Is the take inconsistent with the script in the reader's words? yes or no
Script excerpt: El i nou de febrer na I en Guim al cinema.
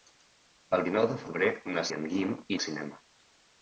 no